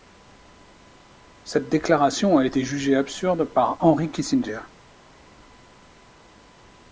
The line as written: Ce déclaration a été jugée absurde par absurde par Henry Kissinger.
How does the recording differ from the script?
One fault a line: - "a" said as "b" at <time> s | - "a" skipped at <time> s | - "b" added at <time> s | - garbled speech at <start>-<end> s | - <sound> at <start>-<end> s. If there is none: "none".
- "Ce" said as "Cette" at 1.4 s
- "absurde par" skipped at 3.8 s